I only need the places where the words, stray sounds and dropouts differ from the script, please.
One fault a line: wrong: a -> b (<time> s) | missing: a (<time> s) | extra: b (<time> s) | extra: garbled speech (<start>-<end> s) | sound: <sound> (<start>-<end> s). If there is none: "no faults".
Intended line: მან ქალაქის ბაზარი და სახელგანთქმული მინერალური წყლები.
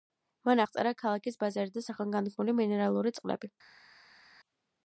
extra: აღწერა (0.6 s)